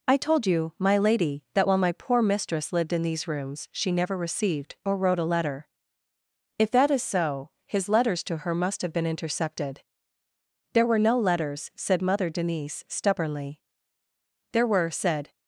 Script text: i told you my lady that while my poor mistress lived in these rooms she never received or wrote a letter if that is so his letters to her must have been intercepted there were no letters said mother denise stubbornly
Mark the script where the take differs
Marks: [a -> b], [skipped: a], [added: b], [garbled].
i told you my lady that while my poor mistress lived in these rooms she never received or wrote a letter if that is so his letters to her must have been intercepted there were no letters said mother denise stubbornly [added: there were said]